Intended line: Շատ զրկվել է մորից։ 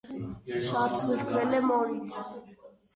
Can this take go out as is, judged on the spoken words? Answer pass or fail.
pass